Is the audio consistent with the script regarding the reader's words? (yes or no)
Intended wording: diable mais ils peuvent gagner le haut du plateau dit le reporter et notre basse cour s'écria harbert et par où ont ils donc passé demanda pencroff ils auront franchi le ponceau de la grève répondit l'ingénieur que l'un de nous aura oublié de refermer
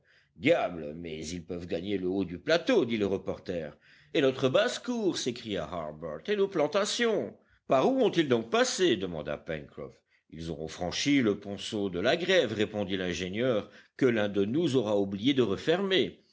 no